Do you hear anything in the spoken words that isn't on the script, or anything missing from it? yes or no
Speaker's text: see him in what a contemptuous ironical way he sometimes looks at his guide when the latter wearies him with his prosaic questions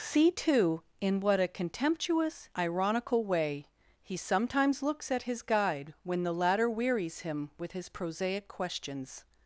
yes